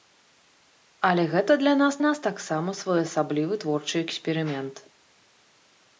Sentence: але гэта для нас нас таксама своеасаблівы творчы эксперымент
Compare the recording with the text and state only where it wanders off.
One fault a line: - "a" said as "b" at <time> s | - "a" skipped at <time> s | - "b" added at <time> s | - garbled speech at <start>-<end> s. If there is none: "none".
none